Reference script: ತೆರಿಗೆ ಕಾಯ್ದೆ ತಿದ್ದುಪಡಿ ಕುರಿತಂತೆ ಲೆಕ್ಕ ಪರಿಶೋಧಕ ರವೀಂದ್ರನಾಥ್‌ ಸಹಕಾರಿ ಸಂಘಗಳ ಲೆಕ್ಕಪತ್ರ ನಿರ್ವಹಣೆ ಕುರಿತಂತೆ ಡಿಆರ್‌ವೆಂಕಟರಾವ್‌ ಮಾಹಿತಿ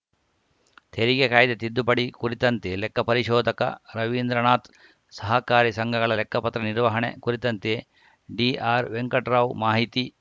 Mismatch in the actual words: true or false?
false